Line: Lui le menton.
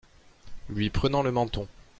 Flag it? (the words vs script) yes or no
yes